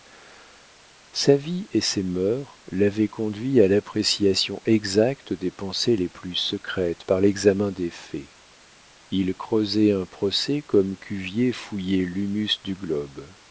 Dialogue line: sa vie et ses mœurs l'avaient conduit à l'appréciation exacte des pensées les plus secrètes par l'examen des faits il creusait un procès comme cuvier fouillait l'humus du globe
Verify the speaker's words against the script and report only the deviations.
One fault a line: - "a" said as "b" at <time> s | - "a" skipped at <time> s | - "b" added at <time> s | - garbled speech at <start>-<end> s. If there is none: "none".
none